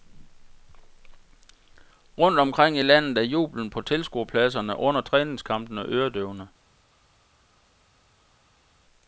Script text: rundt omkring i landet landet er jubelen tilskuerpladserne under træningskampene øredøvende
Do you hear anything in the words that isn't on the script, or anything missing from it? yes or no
yes